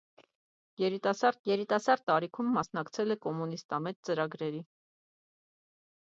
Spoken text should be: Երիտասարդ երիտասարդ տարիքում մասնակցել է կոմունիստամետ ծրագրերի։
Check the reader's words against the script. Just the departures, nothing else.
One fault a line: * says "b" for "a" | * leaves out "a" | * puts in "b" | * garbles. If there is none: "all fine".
all fine